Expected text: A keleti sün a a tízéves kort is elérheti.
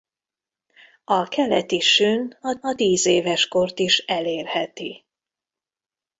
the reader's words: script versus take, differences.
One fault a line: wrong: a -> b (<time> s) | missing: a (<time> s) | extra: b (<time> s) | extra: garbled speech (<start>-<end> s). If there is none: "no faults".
no faults